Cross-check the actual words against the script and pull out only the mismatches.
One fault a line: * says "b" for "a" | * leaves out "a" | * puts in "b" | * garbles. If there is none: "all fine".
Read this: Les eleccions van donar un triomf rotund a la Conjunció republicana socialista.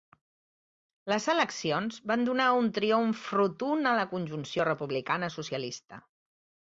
all fine